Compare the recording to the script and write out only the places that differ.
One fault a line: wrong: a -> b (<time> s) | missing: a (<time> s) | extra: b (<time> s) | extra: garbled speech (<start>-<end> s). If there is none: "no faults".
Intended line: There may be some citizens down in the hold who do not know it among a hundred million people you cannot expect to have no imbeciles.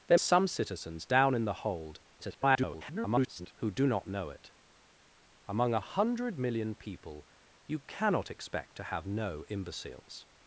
missing: may be (0.2 s)
extra: garbled speech (2.2-3.5 s)